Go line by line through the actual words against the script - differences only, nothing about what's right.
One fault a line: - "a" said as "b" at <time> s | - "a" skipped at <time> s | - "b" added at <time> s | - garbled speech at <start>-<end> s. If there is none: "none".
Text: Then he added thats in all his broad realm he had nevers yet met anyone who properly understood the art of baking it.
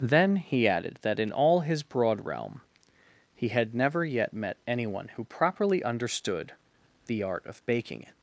- "thats" said as "that" at 1.0 s
- "nevers" said as "never" at 3.7 s